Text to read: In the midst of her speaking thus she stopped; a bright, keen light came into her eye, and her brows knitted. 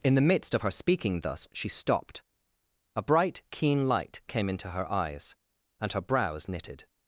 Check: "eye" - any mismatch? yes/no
yes